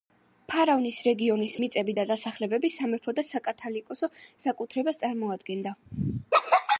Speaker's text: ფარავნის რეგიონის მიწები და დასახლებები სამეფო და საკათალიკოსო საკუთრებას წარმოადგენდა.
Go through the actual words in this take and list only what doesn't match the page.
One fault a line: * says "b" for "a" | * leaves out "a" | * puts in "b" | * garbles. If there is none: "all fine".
all fine